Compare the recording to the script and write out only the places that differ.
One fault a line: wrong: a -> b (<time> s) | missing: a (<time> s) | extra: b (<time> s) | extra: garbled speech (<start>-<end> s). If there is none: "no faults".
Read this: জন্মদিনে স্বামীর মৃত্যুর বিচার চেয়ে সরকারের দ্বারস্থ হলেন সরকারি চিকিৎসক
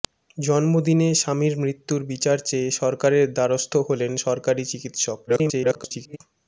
extra: garbled speech (5.3-6.2 s)